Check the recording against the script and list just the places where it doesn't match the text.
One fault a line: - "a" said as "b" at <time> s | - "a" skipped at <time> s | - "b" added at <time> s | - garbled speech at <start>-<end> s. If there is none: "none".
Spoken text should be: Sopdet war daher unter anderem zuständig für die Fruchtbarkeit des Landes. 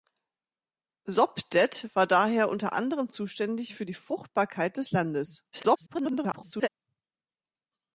- garbled speech at 5.5-6.7 s